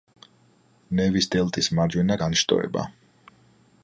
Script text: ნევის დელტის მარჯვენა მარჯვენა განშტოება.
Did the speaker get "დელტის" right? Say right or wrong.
right